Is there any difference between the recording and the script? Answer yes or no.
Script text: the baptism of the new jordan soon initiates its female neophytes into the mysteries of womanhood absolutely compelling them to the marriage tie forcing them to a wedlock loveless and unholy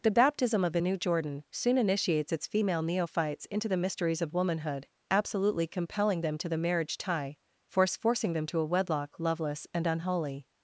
yes